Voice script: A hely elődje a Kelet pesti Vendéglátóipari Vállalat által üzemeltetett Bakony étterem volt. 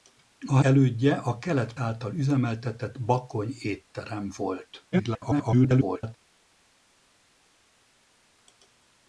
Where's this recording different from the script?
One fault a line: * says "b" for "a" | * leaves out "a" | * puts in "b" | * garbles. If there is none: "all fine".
* leaves out "hely"
* leaves out "pesti Vendéglátóipari Vállalat"
* garbles